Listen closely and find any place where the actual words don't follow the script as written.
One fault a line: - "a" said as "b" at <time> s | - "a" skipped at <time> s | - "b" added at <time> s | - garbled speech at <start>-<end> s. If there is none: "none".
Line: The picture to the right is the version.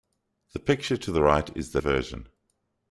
none